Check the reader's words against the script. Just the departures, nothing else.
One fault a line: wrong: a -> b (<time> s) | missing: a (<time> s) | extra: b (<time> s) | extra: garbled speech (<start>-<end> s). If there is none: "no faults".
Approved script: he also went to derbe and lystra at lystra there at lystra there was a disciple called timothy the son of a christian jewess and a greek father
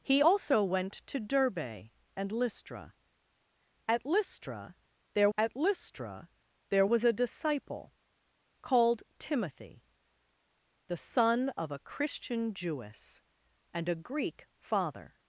no faults